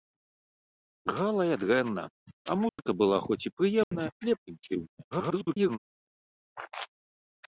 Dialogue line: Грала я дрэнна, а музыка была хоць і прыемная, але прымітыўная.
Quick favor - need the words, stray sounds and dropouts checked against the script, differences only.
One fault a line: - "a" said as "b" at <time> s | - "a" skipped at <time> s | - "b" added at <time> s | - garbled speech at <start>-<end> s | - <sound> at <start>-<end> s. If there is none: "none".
- dropout at 2.7-2.8 s
- dropout at 3.8-3.9 s
- garbled speech at 5.1-5.8 s